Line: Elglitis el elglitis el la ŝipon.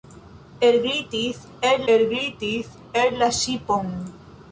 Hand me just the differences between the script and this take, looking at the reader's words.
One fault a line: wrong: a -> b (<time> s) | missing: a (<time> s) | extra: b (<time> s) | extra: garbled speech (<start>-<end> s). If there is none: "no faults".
no faults